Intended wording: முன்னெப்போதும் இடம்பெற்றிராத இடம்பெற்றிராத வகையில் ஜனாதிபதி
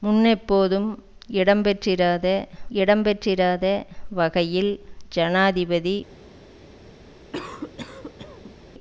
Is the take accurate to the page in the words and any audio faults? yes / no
no